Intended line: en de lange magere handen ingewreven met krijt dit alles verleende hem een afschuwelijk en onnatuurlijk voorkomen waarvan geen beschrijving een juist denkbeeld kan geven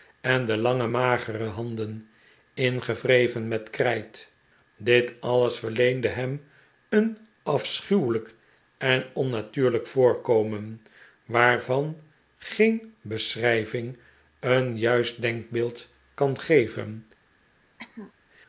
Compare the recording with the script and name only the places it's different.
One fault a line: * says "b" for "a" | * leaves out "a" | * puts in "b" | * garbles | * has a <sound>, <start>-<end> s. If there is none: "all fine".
* has a cough, 17.8-18.1 s